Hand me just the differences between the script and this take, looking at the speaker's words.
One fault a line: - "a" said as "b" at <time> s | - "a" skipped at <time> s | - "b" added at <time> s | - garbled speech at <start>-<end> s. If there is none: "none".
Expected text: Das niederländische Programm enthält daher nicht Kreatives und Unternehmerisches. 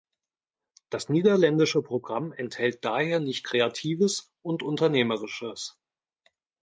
none